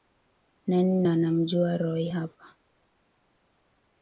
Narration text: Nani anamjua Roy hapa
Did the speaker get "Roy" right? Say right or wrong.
right